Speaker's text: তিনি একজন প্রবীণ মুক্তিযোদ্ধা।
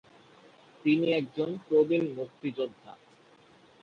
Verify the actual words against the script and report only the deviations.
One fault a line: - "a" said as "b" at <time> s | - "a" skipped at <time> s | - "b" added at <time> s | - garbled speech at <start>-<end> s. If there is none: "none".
none